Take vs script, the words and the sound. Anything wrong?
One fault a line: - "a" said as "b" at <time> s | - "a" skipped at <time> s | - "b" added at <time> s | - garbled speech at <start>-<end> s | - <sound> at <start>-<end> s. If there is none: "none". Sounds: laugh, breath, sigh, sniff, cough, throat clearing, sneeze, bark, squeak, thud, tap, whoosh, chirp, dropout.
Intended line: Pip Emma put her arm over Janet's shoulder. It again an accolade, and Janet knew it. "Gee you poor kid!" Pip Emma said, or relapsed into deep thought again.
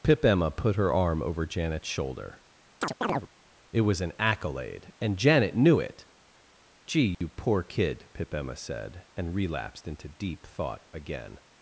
- chirp at 2.8-3.3 s
- "again" said as "was" at 3.8 s
- dropout at 7.1-7.2 s
- "or" said as "and" at 9.1 s